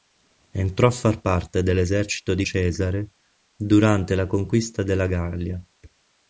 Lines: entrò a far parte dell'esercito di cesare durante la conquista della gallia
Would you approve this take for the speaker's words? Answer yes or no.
yes